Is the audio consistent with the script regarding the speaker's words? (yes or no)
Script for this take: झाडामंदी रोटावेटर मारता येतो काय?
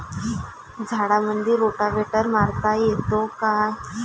yes